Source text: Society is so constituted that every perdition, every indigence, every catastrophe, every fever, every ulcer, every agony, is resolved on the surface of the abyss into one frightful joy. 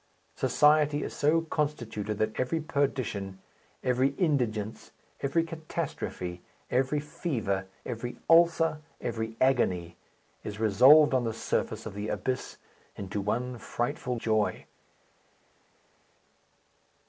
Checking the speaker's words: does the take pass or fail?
pass